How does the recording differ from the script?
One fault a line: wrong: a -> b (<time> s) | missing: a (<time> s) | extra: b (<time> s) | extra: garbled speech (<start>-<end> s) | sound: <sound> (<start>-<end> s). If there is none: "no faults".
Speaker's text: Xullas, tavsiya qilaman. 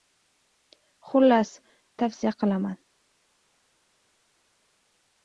no faults